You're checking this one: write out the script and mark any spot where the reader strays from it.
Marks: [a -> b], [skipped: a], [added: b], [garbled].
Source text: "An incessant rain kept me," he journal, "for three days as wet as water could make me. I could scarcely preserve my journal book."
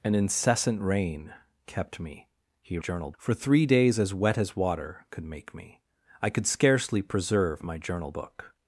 "An incessant rain kept me," he journal, "for three days as wet as water could make me. I could scarcely preserve my journal book."